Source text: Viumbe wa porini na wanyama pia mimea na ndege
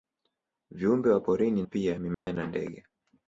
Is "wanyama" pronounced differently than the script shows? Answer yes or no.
yes